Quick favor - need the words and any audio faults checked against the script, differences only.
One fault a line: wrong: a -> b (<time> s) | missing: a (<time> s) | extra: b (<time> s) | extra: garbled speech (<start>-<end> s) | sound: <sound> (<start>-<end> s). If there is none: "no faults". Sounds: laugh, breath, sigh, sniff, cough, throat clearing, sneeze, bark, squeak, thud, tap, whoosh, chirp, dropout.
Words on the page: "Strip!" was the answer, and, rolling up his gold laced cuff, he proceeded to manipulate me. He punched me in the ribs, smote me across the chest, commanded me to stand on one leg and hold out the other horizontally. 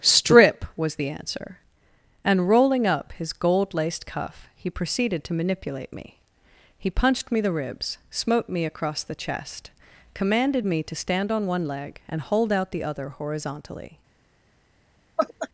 missing: in (7.4 s)
sound: laugh (15.2-15.5 s)